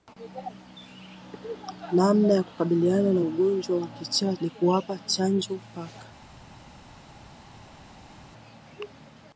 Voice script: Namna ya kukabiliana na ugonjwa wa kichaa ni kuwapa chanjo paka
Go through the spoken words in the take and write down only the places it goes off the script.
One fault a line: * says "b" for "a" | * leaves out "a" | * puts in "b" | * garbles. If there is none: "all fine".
all fine